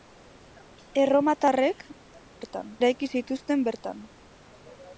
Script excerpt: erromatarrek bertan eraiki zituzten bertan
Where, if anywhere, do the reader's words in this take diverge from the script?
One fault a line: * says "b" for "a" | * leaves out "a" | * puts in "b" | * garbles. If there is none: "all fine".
all fine